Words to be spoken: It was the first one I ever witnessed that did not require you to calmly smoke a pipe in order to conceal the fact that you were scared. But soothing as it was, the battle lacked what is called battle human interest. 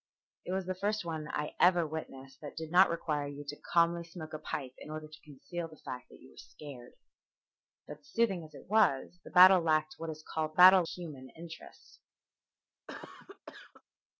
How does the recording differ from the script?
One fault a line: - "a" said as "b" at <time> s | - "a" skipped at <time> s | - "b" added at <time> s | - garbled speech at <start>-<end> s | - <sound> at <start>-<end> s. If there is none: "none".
- cough at 12.9-13.8 s